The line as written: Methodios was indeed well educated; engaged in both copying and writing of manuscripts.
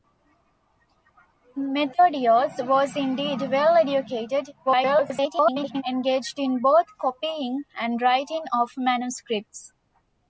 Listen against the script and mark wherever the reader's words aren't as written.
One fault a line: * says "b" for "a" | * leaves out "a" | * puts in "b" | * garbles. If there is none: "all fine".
* garbles